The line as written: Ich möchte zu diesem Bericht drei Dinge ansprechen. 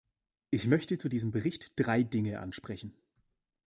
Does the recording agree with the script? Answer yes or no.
yes